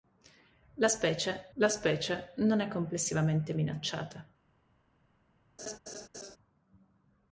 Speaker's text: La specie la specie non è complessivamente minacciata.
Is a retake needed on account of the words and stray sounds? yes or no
yes